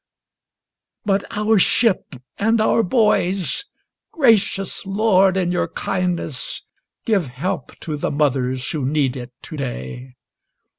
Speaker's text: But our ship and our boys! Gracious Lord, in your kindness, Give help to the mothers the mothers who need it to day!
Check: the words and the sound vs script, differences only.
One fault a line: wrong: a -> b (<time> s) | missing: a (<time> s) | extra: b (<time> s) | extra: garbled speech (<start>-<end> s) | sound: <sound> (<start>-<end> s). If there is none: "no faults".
missing: the mothers (8.7 s)